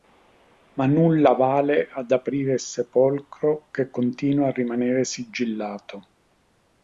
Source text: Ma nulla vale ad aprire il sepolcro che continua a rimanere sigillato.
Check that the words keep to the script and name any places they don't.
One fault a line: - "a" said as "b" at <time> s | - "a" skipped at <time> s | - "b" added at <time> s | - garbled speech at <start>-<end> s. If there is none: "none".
none